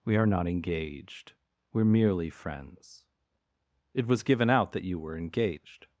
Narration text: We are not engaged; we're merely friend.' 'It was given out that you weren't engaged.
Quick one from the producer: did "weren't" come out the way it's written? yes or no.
no